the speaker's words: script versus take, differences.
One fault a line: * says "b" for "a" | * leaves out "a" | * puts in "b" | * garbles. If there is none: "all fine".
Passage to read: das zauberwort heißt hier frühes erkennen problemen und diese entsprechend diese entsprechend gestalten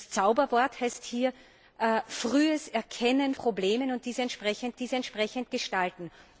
all fine